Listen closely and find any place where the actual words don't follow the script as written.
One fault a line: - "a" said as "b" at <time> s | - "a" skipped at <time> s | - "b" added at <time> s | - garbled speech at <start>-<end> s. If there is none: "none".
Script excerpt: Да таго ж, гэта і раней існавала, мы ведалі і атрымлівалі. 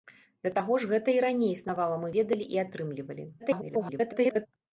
- garbled speech at 3.4-4.5 s